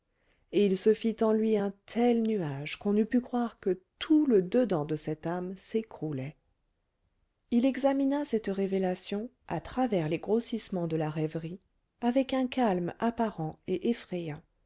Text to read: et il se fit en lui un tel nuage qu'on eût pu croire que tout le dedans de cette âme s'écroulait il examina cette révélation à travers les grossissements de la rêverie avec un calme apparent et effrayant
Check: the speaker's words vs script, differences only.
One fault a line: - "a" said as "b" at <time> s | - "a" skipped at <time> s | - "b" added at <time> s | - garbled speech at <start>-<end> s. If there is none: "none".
none